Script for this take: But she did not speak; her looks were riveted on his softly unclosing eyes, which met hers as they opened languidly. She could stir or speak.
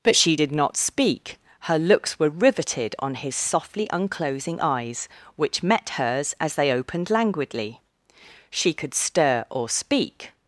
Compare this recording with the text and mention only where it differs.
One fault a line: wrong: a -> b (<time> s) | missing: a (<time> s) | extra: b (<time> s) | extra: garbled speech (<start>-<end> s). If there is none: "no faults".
no faults